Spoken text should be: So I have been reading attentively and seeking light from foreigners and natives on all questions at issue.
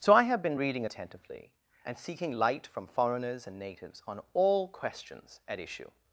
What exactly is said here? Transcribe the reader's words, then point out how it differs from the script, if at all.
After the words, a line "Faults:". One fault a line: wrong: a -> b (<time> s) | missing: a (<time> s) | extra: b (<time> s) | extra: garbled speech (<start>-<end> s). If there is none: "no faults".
So I have been reading attentively and seeking light from foreigners and natives on all questions at issue.
Faults:
no faults